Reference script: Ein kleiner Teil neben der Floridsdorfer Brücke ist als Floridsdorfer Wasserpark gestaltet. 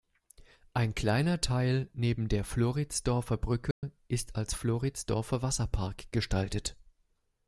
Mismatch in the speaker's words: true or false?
false